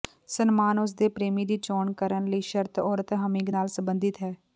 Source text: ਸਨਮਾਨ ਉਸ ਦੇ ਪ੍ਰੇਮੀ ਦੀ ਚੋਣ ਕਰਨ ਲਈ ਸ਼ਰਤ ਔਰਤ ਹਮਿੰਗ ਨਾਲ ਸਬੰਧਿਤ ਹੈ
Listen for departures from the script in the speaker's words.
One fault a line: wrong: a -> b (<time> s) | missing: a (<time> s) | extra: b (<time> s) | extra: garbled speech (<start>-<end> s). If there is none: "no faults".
no faults